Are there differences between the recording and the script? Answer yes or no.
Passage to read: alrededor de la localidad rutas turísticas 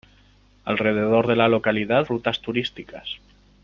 no